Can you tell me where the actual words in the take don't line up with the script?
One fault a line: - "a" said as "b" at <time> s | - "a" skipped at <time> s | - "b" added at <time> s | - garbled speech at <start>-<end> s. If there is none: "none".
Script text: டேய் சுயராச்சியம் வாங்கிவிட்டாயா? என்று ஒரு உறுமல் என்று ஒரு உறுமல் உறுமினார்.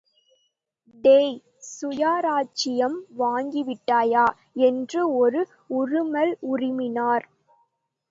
- "என்று ஒரு உறுமல்" skipped at 6.3 s